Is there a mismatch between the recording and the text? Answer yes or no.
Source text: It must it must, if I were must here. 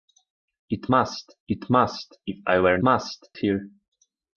no